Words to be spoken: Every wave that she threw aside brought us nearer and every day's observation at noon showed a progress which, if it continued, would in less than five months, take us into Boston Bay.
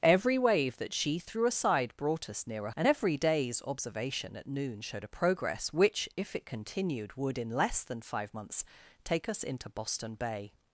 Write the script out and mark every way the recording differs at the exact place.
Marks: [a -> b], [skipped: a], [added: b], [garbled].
Every wave that she threw aside brought us nearer and every day's observation at noon showed a progress which, if it continued, would in less than five months, take us into Boston Bay.